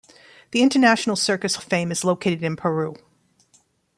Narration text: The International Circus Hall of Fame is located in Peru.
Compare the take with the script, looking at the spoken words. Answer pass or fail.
fail